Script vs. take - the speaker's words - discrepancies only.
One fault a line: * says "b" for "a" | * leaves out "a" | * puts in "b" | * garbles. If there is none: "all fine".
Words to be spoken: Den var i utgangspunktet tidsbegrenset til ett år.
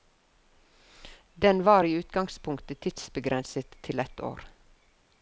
all fine